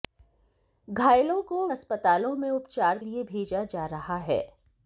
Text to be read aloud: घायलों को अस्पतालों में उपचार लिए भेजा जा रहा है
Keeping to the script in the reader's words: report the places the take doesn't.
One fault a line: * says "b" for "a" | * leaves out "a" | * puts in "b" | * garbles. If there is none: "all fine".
all fine